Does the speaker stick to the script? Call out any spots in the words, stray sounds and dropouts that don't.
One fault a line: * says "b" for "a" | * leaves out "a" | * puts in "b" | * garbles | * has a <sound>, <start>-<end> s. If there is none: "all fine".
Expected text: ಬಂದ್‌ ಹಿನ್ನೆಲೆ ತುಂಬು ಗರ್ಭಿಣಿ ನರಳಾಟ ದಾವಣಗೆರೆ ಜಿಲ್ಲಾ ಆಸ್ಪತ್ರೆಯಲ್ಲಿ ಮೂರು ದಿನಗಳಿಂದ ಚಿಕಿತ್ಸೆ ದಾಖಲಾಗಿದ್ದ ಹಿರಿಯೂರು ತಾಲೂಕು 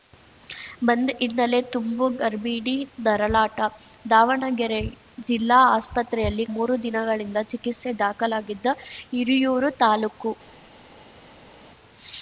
all fine